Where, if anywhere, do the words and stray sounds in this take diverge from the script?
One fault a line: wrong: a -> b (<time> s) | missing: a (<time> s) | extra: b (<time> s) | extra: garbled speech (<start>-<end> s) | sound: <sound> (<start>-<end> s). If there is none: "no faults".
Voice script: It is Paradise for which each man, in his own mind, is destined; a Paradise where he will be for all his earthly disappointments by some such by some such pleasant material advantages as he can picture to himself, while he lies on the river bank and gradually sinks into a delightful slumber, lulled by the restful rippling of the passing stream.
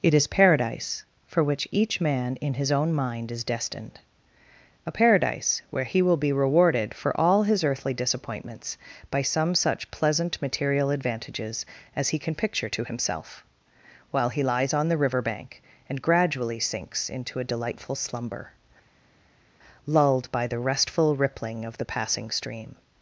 extra: rewarded (6.3 s)
missing: by some such (9.9 s)